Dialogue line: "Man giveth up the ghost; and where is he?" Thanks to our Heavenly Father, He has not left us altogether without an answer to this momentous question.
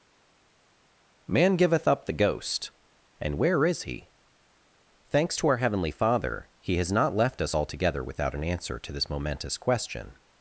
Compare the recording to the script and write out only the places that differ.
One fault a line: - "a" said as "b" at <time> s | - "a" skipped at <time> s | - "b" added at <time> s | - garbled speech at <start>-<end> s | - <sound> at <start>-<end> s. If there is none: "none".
none